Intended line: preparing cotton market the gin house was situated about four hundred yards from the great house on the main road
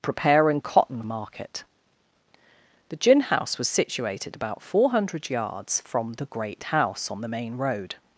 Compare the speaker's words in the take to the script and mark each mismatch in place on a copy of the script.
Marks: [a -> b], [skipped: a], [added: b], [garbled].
preparing cotton market the gin house was situated about four hundred yards from the great house on the main road